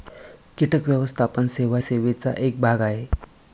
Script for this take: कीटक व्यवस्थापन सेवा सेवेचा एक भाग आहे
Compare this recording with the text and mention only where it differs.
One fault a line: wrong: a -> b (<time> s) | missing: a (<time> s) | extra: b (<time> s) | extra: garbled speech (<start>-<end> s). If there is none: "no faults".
no faults